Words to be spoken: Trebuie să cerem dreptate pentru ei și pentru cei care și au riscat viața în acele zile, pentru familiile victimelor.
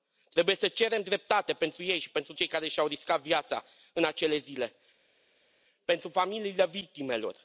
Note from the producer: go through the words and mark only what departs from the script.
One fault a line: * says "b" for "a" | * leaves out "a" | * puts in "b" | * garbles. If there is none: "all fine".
all fine